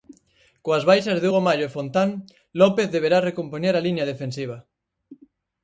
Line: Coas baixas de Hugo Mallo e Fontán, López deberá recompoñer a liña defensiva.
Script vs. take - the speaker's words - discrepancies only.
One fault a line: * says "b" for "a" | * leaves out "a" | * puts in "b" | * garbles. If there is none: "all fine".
all fine